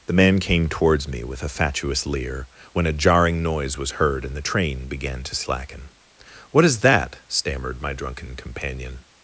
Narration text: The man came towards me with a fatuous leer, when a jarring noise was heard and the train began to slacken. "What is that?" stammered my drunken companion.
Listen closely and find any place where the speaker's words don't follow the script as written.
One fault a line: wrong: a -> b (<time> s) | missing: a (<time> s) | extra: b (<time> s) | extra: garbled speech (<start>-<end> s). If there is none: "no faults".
no faults